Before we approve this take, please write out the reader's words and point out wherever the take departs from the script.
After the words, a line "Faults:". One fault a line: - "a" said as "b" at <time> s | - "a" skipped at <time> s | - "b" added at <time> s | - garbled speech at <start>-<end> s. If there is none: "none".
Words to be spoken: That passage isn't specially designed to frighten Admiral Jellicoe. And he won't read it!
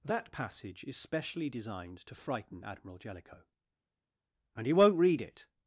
That passage is specially designed to frighten Admiral Jellicoe. And he won't read it!
Faults:
- "isn't" said as "is" at 0.8 s